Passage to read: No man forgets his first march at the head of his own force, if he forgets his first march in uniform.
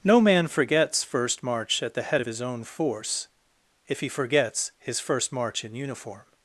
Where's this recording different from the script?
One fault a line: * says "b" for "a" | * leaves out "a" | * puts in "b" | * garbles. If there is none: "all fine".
* leaves out "his"